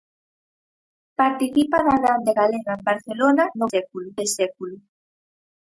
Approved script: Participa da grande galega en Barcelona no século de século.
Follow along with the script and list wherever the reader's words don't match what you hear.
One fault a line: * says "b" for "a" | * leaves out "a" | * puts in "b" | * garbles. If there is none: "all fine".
all fine